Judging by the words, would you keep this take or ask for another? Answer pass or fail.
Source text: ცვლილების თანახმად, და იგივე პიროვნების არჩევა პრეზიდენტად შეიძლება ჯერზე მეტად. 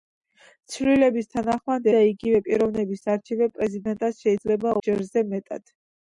pass